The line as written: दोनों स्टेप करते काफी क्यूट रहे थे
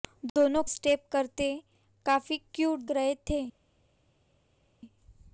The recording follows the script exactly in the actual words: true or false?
true